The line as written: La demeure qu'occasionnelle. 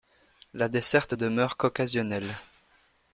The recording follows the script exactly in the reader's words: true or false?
false